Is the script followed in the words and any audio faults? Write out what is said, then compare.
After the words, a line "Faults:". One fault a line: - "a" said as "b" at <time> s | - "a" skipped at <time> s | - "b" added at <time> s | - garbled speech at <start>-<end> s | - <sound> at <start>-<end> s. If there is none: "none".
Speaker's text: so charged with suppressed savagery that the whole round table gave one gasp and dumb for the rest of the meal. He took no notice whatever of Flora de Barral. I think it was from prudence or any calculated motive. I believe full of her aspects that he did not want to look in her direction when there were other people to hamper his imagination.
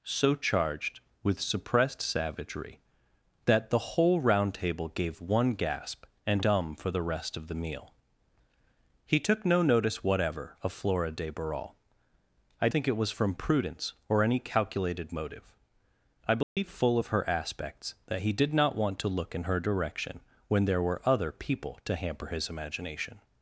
so charged with suppressed savagery that the whole round table gave one gasp and dumb for the rest of the meal. He took no notice whatever of Flora de Barral. I think it was from prudence or any calculated motive. I believe full of her aspects that he did not want to look in her direction when there were other people to hamper his imagination.
Faults:
- dropout at 16.4-16.6 s